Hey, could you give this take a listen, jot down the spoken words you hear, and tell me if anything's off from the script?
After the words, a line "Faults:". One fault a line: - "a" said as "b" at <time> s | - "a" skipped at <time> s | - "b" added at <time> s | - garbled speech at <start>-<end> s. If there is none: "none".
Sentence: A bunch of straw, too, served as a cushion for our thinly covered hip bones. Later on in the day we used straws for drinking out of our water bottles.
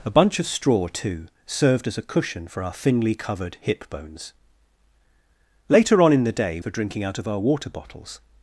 A bunch of straw, too, served as a cushion for our thinly covered hip bones. Later on in the day for drinking out of our water bottles.
Faults:
- "we used straws" skipped at 6.6 s